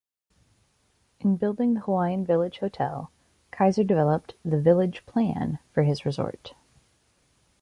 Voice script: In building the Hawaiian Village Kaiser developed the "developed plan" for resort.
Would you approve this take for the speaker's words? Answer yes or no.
no